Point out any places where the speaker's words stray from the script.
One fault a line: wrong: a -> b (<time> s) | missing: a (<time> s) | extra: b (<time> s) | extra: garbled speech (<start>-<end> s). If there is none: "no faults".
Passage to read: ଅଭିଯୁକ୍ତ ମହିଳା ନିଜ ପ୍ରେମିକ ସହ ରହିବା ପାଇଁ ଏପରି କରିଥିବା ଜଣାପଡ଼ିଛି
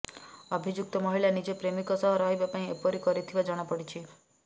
no faults